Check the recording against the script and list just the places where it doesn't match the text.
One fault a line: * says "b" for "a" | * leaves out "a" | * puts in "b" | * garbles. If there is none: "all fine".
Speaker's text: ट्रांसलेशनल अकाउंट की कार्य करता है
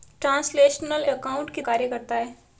all fine